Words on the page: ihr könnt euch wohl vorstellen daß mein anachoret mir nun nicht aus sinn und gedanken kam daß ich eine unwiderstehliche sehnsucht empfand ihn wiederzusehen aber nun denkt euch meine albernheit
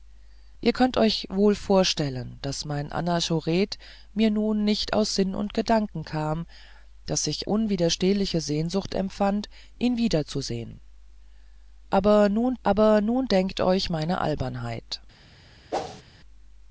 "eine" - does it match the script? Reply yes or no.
no